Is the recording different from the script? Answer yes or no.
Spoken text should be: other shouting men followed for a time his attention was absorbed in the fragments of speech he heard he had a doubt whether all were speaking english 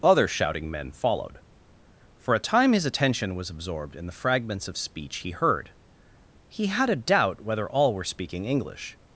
no